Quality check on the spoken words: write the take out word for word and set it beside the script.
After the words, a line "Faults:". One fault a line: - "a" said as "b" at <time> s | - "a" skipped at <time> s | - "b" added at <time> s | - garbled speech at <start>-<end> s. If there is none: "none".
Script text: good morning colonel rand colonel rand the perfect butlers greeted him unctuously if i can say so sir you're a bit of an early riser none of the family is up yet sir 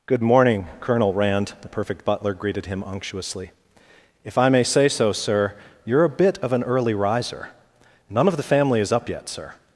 good morning colonel rand the perfect butler greeted him unctuously if i may say so sir you're a bit of an early riser none of the family is up yet sir
Faults:
- "colonel rand" skipped at 1.5 s
- "butlers" said as "butler" at 2.0 s
- "can" said as "may" at 4.5 s